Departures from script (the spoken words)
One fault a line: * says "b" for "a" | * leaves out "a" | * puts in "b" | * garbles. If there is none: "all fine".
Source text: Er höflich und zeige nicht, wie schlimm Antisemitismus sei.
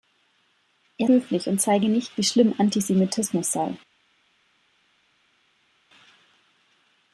all fine